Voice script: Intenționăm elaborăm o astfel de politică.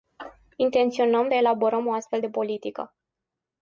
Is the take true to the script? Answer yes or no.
yes